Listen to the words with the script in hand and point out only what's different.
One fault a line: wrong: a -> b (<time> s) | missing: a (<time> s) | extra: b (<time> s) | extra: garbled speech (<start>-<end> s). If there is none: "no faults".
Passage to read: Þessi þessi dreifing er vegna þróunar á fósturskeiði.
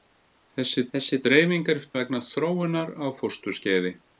no faults